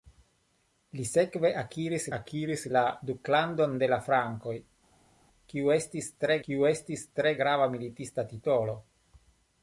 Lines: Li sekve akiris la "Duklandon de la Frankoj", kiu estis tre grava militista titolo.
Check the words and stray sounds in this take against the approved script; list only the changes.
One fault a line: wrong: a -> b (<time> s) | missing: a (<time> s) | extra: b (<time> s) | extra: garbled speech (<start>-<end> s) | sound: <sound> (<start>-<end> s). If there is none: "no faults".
extra: akiris (2.2 s)
extra: kiu estis tre (6.5 s)